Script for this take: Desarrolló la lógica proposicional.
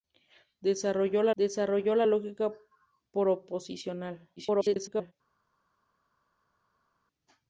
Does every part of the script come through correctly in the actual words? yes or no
no